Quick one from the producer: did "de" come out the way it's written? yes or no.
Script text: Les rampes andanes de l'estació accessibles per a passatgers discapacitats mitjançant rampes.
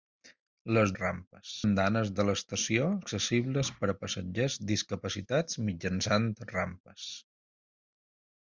yes